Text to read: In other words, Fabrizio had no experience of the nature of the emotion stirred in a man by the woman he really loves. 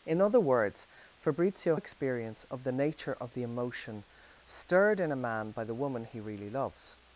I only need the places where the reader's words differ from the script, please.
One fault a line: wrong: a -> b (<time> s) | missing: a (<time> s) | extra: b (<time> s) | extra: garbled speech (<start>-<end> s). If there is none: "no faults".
missing: had no (1.8 s)